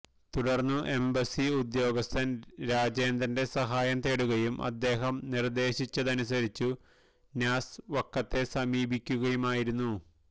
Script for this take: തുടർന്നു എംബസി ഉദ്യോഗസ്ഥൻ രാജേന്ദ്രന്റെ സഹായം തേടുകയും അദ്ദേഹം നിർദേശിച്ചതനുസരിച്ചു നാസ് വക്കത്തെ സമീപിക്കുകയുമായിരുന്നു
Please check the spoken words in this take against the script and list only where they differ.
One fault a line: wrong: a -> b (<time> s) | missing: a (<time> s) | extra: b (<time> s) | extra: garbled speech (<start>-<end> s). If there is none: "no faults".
no faults